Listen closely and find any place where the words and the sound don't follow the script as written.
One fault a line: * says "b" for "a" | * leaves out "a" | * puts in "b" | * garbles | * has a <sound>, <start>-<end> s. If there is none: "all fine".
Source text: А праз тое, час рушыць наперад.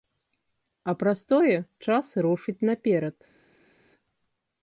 all fine